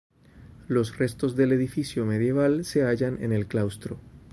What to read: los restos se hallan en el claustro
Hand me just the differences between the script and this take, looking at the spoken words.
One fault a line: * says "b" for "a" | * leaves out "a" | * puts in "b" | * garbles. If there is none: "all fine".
* puts in "del edificio medieval"